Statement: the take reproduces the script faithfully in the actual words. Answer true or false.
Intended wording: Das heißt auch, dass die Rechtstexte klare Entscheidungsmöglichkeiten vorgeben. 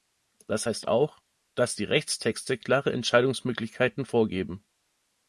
true